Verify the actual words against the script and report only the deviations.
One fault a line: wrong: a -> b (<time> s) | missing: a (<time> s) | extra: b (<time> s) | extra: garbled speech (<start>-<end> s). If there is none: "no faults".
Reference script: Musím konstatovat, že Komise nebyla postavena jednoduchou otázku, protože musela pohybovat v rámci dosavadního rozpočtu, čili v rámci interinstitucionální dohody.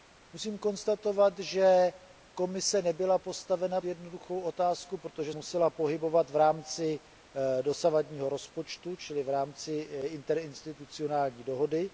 no faults